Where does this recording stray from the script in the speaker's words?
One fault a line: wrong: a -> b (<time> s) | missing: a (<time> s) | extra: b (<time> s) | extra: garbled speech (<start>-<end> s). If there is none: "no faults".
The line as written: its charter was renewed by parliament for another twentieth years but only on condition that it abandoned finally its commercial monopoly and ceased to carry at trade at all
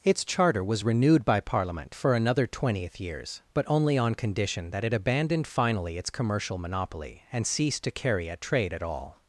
no faults